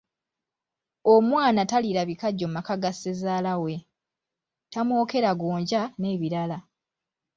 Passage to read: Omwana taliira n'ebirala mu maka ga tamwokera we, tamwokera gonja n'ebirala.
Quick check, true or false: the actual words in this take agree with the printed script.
false